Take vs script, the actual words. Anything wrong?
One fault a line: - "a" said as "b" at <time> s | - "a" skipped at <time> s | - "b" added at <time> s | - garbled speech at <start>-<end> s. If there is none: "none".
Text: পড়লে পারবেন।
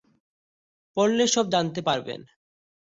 - "সব জানতে" added at 1.3 s